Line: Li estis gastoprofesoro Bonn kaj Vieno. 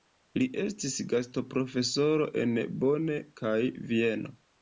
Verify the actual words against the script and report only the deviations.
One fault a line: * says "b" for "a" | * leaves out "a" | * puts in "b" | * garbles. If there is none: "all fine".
* puts in "en"